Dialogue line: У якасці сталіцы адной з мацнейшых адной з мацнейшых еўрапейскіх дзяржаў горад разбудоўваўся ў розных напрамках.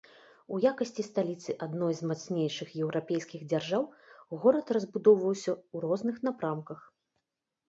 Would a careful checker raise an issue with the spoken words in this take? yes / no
yes